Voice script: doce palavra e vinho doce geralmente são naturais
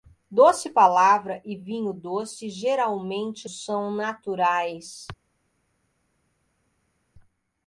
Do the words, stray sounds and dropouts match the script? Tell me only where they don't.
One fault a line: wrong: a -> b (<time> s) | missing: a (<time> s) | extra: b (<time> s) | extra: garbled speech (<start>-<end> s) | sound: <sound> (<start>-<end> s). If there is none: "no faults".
no faults